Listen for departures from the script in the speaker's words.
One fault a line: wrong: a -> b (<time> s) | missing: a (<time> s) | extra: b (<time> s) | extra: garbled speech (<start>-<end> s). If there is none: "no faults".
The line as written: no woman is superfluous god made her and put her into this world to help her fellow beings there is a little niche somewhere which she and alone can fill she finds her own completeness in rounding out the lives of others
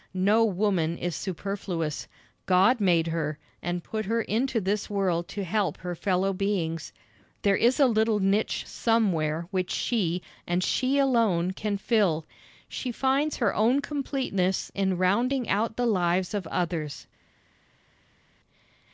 extra: she (10.6 s)